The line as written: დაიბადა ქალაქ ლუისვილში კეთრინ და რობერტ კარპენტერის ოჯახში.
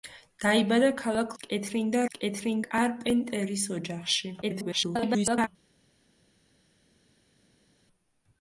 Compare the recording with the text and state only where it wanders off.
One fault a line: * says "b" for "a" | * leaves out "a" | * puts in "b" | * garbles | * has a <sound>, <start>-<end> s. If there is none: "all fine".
* leaves out "ლუისვილში"
* says "კეთრინ" for "რობერტ"
* garbles